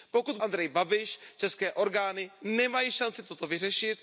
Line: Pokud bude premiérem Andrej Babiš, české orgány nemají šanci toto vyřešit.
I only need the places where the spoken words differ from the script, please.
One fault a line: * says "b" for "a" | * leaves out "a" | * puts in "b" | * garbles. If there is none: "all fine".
* leaves out "bude premiérem"